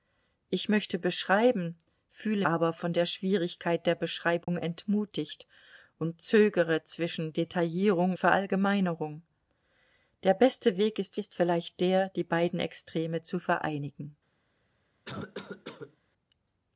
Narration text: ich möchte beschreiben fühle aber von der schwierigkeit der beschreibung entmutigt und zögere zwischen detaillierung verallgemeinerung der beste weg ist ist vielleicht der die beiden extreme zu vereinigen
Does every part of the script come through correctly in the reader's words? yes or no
yes